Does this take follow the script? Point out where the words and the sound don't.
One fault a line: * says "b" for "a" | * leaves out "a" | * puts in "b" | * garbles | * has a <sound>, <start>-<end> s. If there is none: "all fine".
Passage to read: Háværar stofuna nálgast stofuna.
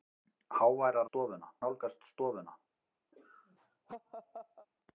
* has a laugh, 3.1-4.7 s